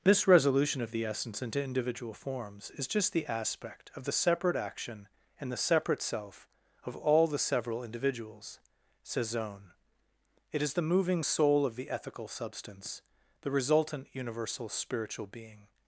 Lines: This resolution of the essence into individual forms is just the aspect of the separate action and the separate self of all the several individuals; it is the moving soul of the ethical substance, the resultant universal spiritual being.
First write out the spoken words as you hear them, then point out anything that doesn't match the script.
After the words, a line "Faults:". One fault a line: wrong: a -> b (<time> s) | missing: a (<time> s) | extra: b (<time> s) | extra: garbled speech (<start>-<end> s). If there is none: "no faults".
This resolution of the essence into individual forms is just the aspect of the separate action and the separate self of all the several individuals; says zone it is the moving soul of the ethical substance, the resultant universal spiritual being.
Faults:
extra: says zone (9.0 s)